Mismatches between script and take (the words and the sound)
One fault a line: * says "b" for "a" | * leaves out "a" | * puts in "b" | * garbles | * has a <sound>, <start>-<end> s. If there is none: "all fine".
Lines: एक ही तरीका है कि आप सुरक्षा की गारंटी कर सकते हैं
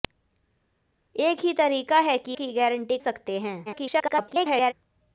* leaves out "आप सुरक्षा"
* leaves out "कर"
* garbles